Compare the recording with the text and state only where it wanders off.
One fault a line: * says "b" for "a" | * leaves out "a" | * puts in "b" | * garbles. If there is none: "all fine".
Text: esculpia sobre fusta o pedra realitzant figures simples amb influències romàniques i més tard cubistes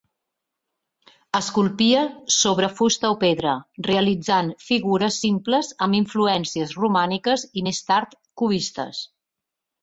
all fine